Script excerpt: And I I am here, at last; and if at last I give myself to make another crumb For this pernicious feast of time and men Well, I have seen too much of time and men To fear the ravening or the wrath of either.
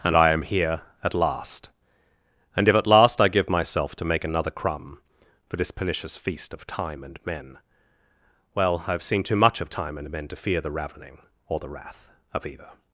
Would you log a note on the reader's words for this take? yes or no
yes